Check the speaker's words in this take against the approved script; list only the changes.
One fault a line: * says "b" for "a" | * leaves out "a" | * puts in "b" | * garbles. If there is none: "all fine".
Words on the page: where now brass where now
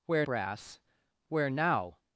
* leaves out "now"